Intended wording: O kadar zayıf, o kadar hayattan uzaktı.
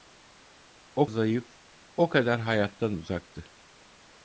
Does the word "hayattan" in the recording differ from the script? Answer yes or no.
no